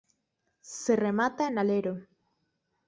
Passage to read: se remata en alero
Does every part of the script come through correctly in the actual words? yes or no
yes